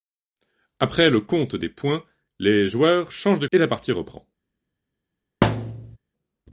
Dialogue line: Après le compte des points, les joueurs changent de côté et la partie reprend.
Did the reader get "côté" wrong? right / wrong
wrong